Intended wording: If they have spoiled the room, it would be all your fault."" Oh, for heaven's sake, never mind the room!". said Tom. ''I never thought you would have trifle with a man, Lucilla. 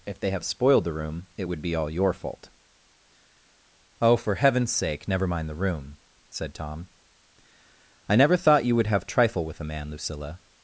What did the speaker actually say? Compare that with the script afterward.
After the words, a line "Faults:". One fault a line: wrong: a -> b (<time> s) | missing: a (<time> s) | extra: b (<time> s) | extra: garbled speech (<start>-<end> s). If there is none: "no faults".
If they have spoiled the room, it would be all your fault."" Oh, for heaven's sake, never mind the room!". said Tom. ''I never thought you would have trifle with a man, Lucilla.
Faults:
no faults